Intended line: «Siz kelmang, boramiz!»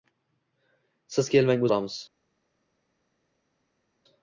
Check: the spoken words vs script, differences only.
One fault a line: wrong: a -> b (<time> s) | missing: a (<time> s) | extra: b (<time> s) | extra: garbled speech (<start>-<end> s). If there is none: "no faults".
no faults